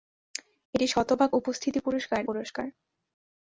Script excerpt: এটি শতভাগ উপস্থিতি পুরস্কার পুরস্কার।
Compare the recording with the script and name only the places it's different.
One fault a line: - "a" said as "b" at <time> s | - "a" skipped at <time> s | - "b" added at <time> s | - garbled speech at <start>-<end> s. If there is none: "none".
none